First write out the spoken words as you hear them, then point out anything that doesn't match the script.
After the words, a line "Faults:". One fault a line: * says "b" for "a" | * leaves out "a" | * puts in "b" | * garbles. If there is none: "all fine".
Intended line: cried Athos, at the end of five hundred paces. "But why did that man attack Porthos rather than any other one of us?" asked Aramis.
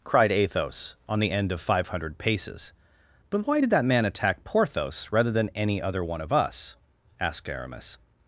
cried Athos, on the end of five hundred paces. "But why did that man attack Porthos rather than any other one of us?" asked Aramis.
Faults:
* says "on" for "at"